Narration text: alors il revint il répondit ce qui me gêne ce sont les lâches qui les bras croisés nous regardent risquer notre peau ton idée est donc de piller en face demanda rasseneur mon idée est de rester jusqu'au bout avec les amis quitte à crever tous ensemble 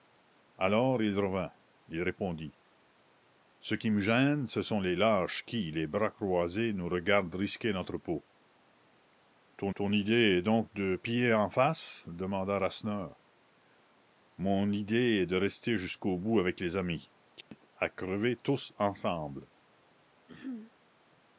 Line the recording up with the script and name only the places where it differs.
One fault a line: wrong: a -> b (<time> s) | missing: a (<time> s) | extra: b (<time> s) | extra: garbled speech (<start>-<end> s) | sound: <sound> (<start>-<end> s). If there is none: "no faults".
extra: ton (9.7 s)
sound: dropout (17.4-17.5 s)
sound: throat clearing (20.3-20.7 s)